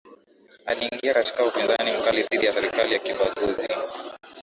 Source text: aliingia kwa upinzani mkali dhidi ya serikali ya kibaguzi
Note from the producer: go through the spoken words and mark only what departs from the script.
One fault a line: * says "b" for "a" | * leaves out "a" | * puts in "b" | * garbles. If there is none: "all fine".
* says "katika" for "kwa"